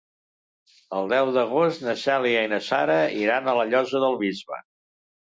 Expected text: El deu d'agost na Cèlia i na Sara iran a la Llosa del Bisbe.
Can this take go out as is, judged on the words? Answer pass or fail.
pass